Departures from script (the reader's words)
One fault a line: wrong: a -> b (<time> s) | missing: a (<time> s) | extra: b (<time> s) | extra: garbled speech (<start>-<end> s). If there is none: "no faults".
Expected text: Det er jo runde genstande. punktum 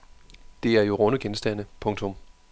no faults